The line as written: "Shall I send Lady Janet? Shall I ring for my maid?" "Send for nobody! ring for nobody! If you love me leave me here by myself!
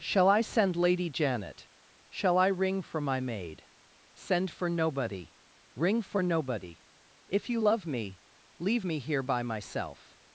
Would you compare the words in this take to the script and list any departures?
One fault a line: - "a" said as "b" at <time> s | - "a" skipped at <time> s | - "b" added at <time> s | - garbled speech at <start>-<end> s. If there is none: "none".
none